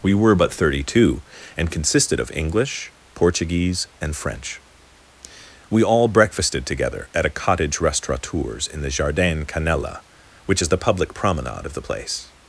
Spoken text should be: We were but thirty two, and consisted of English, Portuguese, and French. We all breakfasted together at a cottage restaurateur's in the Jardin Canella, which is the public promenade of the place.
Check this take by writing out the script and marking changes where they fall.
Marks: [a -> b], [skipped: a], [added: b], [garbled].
We were but thirty two, and consisted of English, Portuguese, and French. We all breakfasted together at a cottage restaurateur's in the Jardin Canella, which is the public promenade of the place.